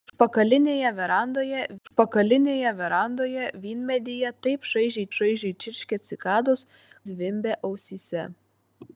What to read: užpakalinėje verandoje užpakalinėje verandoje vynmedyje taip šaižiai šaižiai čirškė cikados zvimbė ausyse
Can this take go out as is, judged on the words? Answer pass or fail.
pass